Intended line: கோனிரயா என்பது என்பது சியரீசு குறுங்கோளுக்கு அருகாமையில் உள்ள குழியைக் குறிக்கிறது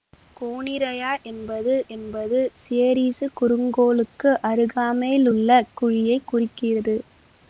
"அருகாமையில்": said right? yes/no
yes